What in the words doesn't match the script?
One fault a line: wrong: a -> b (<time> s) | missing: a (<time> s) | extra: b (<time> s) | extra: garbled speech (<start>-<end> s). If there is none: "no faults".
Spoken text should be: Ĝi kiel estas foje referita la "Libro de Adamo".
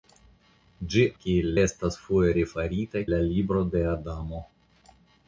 no faults